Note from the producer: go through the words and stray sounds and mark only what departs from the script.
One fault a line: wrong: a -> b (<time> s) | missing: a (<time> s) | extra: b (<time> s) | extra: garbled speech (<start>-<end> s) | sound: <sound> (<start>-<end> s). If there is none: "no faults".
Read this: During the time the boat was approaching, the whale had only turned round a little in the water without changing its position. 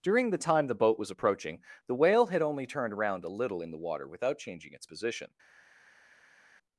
wrong: round -> around (2.9 s)